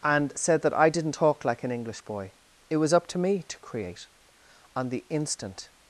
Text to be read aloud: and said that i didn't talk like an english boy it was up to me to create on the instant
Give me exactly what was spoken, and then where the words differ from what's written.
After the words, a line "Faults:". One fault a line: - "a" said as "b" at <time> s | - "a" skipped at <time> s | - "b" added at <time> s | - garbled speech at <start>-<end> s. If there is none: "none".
and said that i didn't talk like an english boy it was up to me to create on the instant
Faults:
none